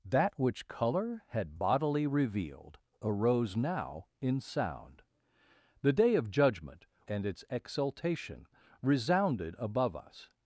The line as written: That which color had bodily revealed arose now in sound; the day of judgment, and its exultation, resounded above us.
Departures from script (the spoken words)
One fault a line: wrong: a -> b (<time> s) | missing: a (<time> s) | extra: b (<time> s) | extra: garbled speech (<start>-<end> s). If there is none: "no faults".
no faults